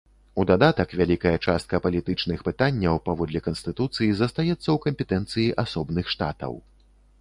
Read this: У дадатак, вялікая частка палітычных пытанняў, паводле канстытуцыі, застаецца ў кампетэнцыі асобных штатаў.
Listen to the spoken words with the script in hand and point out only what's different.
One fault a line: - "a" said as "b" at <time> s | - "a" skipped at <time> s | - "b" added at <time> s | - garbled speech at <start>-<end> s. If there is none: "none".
none